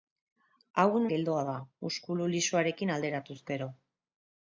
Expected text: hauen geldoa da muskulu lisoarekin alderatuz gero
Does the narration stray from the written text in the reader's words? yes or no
no